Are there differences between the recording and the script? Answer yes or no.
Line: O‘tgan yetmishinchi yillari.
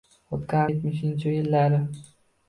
no